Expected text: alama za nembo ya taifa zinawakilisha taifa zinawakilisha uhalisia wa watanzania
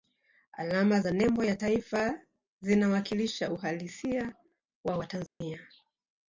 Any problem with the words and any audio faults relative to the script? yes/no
yes